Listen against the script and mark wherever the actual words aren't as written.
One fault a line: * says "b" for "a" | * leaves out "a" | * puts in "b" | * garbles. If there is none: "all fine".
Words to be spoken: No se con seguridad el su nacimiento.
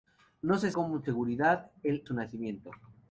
all fine